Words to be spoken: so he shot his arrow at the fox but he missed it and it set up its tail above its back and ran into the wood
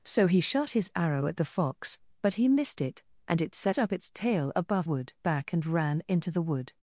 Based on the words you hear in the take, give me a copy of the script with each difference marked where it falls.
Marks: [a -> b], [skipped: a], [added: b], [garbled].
so he shot his arrow at the fox but he missed it and it set up its tail above [its -> wood] back and ran into the wood